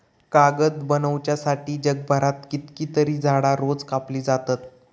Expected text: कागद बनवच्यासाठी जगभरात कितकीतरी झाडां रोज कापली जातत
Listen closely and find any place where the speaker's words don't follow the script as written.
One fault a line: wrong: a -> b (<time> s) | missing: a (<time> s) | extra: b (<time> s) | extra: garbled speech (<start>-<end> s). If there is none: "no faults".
no faults